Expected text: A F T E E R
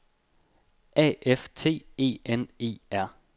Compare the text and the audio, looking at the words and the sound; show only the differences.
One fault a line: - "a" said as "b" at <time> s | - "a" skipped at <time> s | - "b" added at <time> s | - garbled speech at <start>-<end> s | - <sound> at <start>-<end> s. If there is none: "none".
- "N" added at 2.2 s